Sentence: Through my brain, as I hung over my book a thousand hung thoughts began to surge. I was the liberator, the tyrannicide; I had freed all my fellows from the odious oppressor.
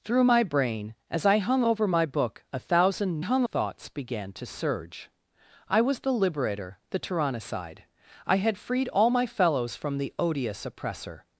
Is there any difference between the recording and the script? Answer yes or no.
no